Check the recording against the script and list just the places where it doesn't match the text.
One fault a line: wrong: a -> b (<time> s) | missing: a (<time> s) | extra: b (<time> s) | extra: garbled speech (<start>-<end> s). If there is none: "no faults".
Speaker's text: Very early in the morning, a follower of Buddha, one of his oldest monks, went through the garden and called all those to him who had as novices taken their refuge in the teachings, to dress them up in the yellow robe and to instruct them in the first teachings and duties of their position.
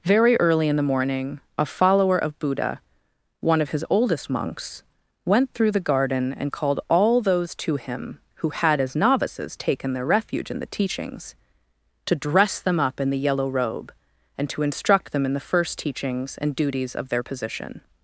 no faults